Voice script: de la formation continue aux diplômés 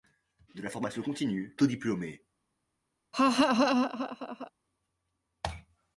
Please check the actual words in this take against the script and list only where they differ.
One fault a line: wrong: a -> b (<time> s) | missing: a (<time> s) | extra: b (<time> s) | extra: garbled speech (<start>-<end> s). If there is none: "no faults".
no faults